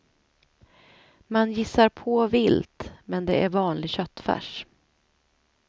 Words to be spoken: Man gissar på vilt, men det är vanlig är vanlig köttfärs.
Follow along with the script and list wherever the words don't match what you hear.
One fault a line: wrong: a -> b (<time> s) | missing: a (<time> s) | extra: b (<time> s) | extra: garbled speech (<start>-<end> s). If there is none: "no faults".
missing: är vanlig (3.9 s)